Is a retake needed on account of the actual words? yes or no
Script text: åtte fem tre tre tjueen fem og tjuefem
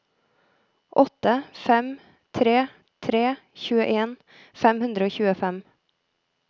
yes